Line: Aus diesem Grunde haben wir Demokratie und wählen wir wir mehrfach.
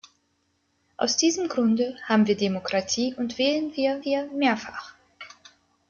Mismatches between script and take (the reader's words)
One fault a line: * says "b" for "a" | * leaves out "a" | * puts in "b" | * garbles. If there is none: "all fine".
all fine